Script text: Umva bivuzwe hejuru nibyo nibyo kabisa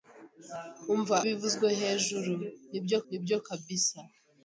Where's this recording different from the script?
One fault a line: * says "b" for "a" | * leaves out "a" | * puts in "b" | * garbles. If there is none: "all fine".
all fine